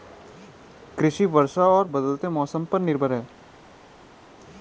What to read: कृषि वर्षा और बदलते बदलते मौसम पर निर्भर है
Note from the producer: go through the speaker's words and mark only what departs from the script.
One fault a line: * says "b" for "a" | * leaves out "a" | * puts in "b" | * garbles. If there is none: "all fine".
* leaves out "बदलते"